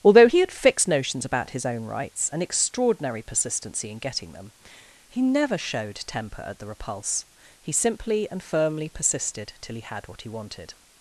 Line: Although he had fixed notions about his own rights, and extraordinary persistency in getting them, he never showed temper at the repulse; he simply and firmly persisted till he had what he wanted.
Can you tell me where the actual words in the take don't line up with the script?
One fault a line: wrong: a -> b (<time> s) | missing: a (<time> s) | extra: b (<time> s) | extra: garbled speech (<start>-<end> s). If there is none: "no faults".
no faults